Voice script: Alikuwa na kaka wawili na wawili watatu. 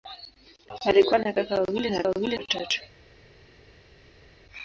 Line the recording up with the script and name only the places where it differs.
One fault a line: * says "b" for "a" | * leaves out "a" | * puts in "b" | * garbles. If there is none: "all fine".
all fine